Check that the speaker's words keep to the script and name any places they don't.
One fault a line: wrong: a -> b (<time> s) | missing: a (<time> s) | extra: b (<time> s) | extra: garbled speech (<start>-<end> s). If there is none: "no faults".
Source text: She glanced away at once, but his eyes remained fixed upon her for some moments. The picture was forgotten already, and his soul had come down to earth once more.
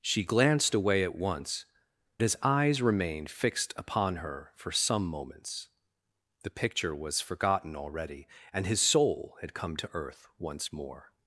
missing: but (1.6 s)
missing: down (9.8 s)